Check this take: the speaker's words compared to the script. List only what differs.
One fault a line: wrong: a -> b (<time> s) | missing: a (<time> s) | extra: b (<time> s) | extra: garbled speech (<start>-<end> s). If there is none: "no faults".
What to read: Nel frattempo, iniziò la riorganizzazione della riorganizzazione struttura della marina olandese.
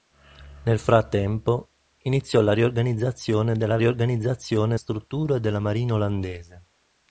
no faults